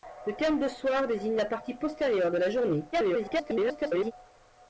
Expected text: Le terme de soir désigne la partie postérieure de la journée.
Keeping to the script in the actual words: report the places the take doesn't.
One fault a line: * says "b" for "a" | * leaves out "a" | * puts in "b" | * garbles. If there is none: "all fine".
* garbles